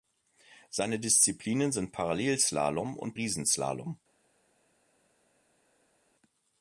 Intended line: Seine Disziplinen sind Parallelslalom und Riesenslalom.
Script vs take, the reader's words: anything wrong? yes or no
no